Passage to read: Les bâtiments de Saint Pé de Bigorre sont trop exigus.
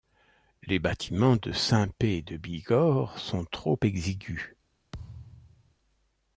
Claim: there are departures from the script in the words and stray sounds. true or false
true